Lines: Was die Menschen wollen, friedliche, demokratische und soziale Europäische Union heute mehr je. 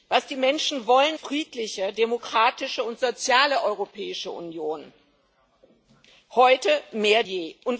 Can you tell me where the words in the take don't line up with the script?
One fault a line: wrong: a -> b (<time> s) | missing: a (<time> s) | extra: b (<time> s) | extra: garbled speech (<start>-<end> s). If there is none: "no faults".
no faults